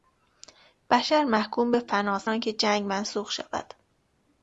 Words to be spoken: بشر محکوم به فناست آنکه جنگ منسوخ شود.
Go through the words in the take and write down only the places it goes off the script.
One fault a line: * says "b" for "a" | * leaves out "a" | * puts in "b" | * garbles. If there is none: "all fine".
all fine